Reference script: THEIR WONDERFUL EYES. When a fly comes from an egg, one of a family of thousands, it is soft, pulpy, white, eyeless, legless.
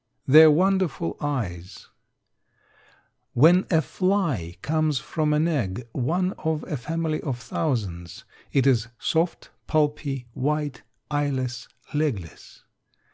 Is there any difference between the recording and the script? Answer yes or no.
no